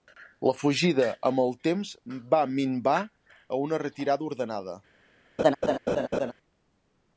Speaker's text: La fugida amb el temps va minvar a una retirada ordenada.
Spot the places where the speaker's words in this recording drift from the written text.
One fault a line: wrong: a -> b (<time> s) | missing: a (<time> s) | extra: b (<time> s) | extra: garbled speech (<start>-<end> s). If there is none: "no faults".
no faults